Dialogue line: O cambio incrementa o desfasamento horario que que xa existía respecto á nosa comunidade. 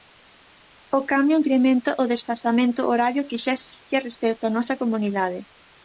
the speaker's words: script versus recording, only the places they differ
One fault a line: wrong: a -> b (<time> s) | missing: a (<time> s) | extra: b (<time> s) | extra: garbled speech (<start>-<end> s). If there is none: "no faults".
missing: que (3.4 s)